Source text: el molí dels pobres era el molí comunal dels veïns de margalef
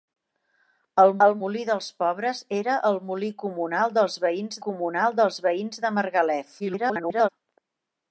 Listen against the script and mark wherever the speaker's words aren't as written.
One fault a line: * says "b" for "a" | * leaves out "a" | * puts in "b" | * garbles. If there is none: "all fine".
* puts in "el"
* puts in "comunal dels veïns"
* garbles